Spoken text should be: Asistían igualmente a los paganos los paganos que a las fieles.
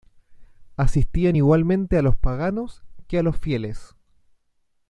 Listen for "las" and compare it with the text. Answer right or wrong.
wrong